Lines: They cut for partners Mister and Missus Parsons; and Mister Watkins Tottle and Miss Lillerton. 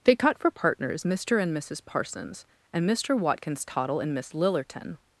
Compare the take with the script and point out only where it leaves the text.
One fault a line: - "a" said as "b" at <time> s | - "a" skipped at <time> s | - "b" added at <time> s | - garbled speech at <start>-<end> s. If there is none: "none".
none